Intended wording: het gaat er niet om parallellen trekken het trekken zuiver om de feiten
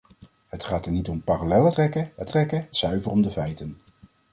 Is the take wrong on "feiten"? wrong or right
right